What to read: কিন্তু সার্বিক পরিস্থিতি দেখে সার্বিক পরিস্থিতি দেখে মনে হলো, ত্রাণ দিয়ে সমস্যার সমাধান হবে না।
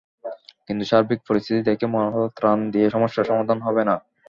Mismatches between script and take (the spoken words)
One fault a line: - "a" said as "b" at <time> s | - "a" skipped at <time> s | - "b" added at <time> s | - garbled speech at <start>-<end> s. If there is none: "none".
- "সার্বিক পরিস্থিতি দেখে" skipped at 1.9 s